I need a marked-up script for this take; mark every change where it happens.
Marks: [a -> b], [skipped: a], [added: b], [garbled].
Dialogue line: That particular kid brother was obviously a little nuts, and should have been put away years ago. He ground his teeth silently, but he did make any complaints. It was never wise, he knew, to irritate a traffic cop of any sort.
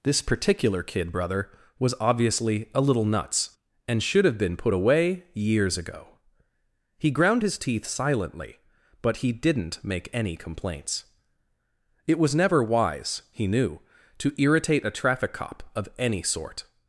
[That -> This] particular kid brother was obviously a little nuts, and should have been put away years ago. He ground his teeth silently, but he [did -> didn't] make any complaints. It was never wise, he knew, to irritate a traffic cop of any sort.